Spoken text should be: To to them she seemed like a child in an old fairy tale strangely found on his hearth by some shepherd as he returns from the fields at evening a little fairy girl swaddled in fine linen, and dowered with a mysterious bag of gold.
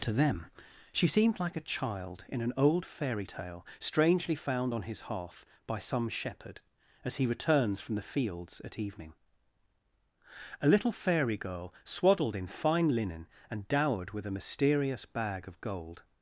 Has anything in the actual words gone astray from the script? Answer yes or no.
yes